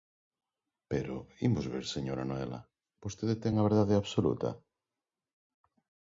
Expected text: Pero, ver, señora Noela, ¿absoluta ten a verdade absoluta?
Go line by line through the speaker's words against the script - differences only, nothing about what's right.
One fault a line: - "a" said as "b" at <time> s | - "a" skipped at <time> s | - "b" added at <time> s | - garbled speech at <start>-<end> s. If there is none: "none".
- "imos" added at 1.5 s
- "absoluta" said as "vostede" at 3.0 s